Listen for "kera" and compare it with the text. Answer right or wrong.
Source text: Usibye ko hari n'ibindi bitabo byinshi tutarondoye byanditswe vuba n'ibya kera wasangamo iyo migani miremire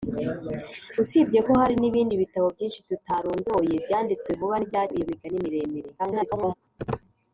wrong